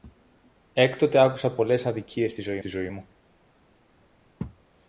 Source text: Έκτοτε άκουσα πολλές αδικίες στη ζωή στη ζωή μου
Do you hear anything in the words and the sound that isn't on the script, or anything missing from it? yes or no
no